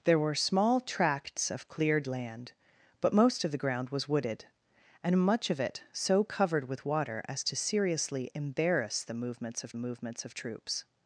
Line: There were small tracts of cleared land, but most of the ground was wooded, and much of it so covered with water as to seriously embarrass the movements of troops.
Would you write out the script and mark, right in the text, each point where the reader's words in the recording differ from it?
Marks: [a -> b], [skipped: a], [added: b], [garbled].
There were small tracts of cleared land, but most of the ground was wooded, and much of it so covered with water as to seriously embarrass the movements of [added: movements of] troops.